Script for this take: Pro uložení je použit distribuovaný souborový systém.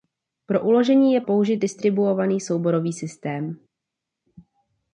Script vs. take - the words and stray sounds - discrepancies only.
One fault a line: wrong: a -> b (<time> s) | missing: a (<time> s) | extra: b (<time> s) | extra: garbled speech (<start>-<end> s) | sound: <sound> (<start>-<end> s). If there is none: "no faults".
no faults